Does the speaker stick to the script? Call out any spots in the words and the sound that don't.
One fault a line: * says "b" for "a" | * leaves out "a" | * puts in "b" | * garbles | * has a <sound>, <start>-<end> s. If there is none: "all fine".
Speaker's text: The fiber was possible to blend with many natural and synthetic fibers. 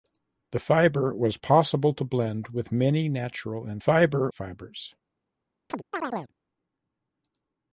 * says "fiber" for "synthetic"
* has a chirp, 5.7-6.3 s